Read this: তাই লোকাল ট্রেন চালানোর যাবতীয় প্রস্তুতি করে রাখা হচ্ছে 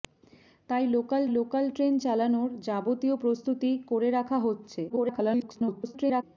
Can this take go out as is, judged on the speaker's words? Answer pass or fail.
fail